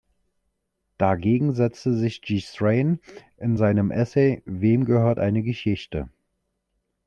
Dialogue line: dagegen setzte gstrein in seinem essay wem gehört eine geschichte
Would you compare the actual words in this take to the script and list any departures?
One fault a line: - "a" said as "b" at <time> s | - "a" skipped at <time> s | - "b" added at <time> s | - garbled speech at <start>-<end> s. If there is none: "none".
- "sich" added at 1.9 s